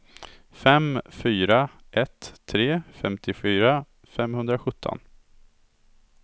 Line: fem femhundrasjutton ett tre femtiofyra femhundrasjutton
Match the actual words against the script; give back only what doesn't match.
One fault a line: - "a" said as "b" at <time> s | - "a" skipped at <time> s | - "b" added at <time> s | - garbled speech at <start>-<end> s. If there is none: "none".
- "femhundrasjutton" said as "fyra" at 1.1 s